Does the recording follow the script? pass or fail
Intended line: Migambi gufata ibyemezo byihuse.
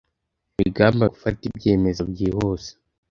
pass